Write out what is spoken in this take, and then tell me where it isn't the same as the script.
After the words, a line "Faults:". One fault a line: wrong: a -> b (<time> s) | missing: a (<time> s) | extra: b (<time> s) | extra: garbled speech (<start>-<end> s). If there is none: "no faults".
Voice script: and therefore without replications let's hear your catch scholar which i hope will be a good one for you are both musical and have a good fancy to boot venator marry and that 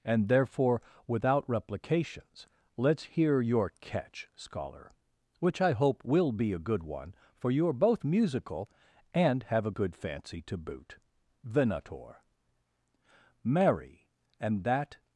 and therefore without replications let's hear your catch scholar which i hope will be a good one for you are both musical and have a good fancy to boot venator marry and that
Faults:
no faults